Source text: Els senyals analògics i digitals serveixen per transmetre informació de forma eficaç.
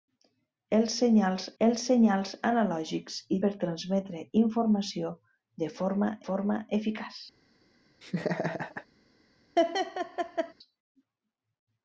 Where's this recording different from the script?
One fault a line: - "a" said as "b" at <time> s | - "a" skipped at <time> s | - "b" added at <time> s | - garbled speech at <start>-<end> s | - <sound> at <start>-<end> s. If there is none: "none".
- "els senyals" added at 1.6 s
- "digitals serveixen" skipped at 3.4 s
- "forma" added at 6.3 s
- laugh at 8.0-8.9 s
- laugh at 9.6-10.5 s